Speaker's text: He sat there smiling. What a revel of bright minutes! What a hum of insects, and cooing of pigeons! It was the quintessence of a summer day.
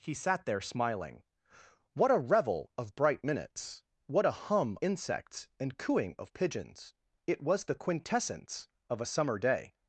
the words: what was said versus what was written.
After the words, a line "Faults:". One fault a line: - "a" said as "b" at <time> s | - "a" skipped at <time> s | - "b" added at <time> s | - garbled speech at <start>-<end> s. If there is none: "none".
He sat there smiling. What a revel of bright minutes! What a hum insects, and cooing of pigeons! It was the quintessence of a summer day.
Faults:
- "of" skipped at 4.8 s